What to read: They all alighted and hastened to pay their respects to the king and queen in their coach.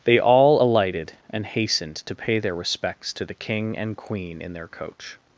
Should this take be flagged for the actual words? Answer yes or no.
no